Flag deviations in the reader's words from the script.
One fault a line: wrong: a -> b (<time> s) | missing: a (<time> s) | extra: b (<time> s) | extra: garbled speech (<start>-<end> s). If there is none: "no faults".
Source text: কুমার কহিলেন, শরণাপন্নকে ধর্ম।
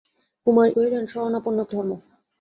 no faults